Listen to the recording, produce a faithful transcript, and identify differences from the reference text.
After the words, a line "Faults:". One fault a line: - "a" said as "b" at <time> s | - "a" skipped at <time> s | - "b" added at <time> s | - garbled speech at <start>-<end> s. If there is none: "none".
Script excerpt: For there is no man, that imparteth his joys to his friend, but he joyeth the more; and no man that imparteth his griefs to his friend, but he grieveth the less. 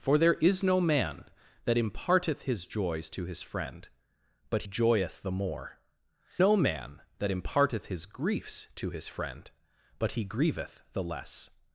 For there is no man, that imparteth his joys to his friend, but joyeth the more; no man that imparteth his griefs to his friend, but he grieveth the less.
Faults:
- "he" skipped at 4.6 s
- "and" skipped at 5.8 s